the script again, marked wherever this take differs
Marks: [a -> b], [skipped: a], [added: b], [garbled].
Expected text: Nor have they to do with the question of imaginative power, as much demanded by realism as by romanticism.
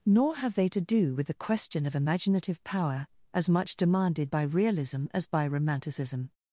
Nor have they to do with the question of imaginative power, as much demanded by realism as by romanticism.